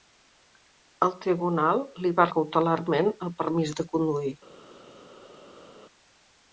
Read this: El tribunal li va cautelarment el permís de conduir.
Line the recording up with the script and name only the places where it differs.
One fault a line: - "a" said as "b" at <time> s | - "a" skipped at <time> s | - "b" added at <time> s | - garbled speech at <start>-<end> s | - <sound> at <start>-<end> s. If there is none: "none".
none